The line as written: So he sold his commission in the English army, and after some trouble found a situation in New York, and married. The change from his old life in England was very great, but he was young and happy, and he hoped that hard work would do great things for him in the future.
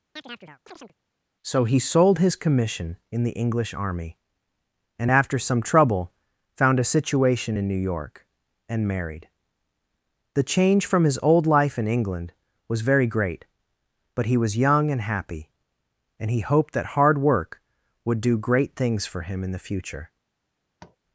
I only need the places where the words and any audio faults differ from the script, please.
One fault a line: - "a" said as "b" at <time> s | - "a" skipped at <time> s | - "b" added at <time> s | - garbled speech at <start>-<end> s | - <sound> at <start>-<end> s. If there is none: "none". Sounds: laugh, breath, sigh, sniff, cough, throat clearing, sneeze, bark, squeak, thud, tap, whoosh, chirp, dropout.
- chirp at 0.2-1.0 s
- tap at 20.8-21.0 s